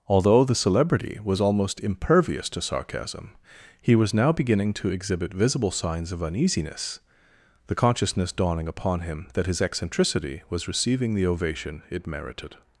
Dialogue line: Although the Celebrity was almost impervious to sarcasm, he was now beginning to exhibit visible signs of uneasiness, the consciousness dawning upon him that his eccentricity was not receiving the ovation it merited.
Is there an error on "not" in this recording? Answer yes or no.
yes